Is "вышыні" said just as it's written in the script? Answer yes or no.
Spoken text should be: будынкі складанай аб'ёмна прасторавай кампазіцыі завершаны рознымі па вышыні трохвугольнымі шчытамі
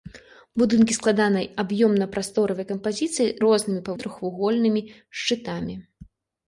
no